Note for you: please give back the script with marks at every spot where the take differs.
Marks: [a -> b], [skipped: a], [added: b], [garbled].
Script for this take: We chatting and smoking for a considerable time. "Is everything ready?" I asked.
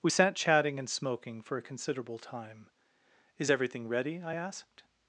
We [added: sat] chatting and smoking for a considerable time. "Is everything ready?" I asked.